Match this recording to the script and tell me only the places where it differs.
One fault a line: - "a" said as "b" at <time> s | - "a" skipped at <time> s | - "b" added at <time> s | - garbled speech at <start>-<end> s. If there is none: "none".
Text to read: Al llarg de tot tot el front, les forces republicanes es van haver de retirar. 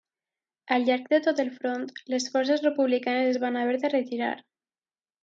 - "tot" skipped at 1.4 s